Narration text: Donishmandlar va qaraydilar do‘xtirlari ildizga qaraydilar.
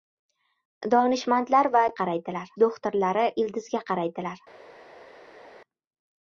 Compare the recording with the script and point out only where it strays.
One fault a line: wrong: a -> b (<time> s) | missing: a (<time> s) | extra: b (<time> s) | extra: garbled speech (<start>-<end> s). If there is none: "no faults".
no faults